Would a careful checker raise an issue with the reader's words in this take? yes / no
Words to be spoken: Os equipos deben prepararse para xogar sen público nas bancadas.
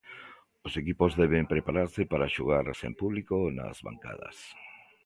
no